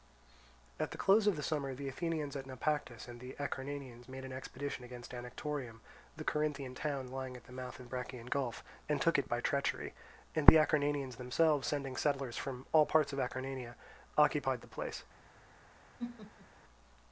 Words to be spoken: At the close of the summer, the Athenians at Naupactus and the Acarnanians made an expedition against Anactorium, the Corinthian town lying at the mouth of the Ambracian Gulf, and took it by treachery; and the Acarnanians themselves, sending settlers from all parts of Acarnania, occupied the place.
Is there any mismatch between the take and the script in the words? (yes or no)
yes